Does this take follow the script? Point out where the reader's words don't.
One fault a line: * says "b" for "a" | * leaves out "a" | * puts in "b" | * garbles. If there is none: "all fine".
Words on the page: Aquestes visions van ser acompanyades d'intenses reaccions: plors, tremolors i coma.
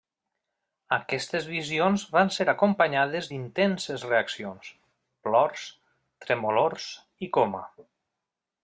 all fine